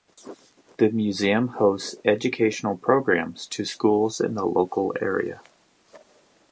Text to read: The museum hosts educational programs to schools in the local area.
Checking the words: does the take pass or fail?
pass